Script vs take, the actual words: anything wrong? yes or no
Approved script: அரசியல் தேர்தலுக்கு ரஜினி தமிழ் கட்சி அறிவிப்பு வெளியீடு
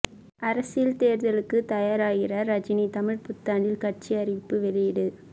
yes